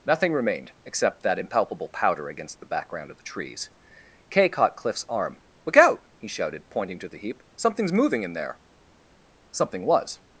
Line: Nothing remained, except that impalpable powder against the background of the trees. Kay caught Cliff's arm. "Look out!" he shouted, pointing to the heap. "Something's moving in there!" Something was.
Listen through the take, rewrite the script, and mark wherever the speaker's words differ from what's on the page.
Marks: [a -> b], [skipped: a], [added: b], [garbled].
Nothing remained, except that impalpable powder against the background of the trees. Kay caught Cliff's arm. "Look out!" he shouted, pointing to the heap. "Something's moving in there!" Something was.